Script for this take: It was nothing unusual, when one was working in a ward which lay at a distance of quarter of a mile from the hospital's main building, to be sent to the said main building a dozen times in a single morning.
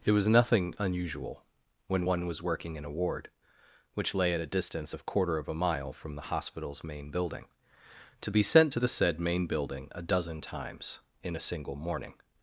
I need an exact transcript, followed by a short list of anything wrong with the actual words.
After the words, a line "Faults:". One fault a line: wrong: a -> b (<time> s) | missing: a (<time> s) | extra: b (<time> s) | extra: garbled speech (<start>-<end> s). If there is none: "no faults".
It was nothing unusual, when one was working in a ward which lay at a distance of quarter of a mile from the hospital's main building, to be sent to the said main building a dozen times in a single morning.
Faults:
no faults